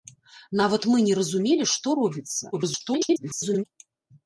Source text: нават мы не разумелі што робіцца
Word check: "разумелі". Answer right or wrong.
right